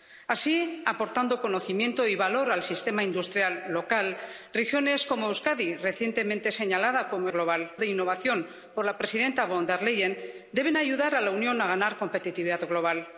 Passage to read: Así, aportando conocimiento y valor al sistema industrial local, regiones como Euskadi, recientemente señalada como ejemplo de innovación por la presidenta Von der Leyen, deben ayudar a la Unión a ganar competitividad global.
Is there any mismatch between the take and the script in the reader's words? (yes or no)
yes